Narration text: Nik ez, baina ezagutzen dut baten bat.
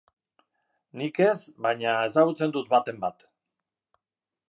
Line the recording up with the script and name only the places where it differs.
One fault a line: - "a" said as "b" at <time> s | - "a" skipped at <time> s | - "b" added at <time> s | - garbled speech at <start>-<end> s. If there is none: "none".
none